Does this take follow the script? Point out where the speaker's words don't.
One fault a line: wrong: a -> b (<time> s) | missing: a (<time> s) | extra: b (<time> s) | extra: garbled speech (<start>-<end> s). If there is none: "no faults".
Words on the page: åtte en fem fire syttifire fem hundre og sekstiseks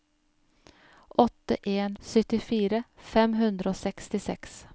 missing: fem fire (2.0 s)